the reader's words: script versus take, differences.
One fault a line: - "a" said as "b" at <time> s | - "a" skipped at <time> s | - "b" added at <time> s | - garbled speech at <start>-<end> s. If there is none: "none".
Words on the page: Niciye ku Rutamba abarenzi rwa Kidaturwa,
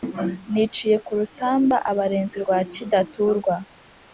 none